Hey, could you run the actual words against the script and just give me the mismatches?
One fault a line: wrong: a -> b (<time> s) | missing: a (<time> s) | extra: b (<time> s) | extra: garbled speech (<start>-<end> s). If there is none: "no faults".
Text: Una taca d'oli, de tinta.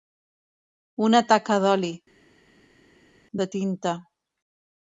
no faults